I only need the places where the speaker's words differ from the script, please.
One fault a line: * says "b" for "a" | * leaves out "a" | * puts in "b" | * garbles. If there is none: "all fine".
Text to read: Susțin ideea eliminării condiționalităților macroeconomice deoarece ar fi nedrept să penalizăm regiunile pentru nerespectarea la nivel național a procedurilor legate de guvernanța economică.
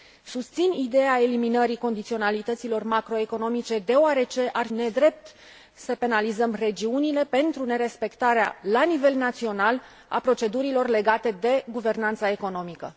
* leaves out "fi"